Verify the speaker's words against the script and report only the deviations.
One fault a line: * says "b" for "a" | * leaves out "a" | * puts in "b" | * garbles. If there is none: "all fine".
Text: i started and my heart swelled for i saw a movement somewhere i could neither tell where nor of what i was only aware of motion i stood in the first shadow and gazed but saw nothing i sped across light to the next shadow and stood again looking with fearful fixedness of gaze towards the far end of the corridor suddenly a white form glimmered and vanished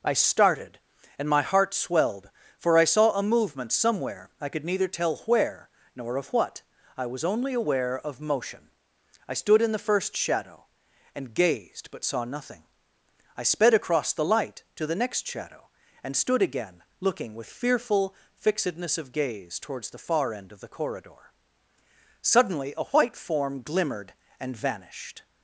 * puts in "the"